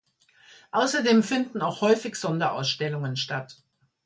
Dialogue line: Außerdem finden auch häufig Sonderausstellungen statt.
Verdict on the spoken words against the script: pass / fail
pass